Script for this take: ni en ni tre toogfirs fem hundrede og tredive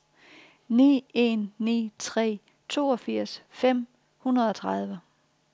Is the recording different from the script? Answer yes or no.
no